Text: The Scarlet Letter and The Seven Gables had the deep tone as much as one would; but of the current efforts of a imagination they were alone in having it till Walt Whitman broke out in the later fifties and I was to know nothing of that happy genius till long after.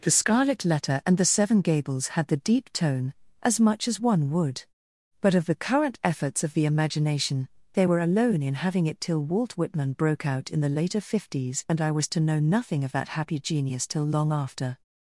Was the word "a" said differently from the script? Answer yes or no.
yes